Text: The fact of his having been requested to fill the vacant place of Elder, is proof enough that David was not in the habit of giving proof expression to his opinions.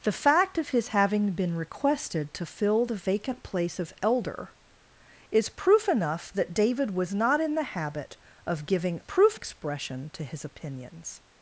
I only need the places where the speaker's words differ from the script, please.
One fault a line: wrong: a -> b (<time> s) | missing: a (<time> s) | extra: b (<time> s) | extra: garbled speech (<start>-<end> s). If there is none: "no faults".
no faults